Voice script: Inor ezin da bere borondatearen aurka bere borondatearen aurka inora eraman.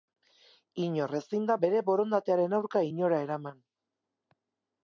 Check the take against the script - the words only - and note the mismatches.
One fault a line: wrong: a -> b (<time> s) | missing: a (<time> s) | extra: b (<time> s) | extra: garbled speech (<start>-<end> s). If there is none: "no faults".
missing: bere borondatearen aurka (2.9 s)